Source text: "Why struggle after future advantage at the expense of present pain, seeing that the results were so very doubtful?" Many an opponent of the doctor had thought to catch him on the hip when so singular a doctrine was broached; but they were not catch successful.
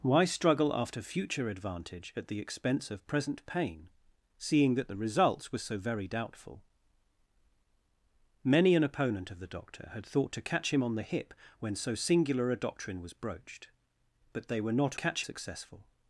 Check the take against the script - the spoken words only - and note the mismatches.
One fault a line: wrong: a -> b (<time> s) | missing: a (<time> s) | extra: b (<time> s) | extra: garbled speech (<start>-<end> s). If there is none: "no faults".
no faults